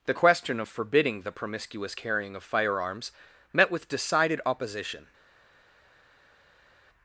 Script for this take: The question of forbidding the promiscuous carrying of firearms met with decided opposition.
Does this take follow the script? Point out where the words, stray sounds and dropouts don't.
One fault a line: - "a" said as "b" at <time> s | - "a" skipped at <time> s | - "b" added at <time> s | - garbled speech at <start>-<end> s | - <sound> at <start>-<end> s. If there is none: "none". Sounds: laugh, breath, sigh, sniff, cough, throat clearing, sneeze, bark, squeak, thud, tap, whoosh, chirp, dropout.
none